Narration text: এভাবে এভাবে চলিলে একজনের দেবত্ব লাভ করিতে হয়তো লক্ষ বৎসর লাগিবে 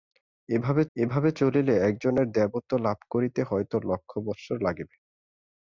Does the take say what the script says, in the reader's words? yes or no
yes